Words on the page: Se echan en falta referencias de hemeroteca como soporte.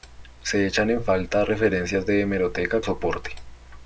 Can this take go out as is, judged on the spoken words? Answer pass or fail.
fail